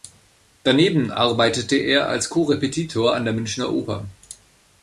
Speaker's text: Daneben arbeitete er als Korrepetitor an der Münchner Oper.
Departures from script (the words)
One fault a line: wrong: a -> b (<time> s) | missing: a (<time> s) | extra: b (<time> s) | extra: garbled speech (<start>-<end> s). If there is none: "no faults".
no faults